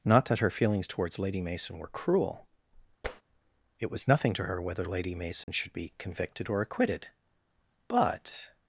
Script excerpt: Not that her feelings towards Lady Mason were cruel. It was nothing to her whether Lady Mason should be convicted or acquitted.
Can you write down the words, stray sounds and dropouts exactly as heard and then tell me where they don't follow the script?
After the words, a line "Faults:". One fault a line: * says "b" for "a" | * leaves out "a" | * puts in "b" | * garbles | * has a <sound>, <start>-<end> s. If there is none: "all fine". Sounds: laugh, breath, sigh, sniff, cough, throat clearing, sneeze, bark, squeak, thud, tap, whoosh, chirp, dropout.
Not that her feelings towards Lady Mason were cruel. It was nothing to her whether Lady Mason should be convicted or acquitted. But
Faults:
* has a tap, 3.0-3.2 s
* has a dropout, 5.4-5.5 s
* puts in "But"